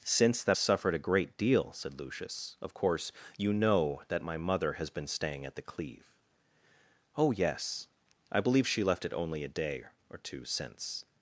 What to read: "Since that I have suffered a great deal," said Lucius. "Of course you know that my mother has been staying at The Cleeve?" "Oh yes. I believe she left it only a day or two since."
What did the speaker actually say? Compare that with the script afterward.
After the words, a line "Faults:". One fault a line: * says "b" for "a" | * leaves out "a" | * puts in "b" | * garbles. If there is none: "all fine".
"Since that suffered a great deal," said Lucius. "Of course you know that my mother has been staying at The Cleeve?" "Oh yes. I believe she left it only a day or two since."
Faults:
* leaves out "I have"